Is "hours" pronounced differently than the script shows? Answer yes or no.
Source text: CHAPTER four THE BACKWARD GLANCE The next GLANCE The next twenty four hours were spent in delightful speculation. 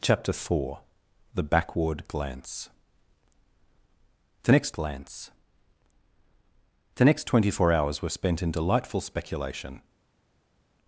no